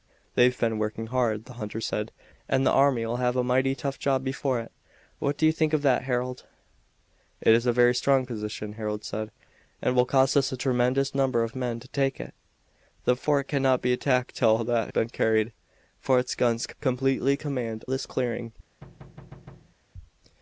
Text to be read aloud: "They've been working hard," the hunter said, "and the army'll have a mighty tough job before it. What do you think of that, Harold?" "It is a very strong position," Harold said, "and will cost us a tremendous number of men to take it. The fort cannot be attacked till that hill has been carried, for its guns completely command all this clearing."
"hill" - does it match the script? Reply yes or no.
no